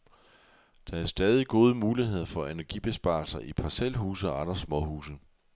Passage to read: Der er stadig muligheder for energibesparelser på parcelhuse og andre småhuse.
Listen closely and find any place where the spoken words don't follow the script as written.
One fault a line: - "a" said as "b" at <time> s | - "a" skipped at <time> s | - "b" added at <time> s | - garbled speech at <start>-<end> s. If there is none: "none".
- "gode" added at 1.5 s
- "på" said as "i" at 3.4 s